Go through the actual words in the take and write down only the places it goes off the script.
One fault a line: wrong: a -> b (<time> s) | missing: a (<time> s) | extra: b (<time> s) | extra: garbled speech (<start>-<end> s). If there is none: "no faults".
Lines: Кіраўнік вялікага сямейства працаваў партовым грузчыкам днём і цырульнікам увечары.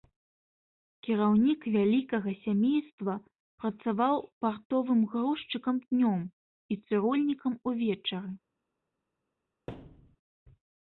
no faults